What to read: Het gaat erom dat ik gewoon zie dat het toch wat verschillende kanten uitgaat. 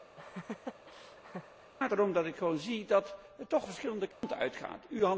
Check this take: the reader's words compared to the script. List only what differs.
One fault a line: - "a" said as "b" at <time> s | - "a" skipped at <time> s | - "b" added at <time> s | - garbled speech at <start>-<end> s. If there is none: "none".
- "wat" skipped at 3.7 s